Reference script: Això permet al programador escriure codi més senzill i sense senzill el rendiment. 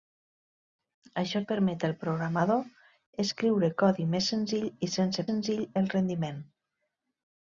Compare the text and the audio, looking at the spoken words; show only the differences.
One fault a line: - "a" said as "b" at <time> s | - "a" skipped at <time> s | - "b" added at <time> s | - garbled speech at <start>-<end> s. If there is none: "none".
none